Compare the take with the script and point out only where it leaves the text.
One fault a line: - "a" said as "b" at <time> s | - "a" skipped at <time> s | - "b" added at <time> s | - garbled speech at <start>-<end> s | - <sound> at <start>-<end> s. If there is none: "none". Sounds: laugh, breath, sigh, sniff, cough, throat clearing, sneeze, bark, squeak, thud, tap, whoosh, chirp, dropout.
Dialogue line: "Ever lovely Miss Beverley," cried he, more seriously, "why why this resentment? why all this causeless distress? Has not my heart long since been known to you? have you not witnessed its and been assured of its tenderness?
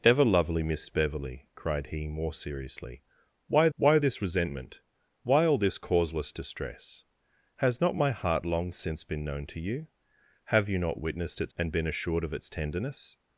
none